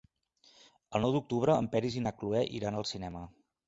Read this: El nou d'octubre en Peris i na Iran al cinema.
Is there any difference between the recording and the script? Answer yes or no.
yes